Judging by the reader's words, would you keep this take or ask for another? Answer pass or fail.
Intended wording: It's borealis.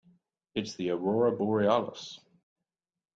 fail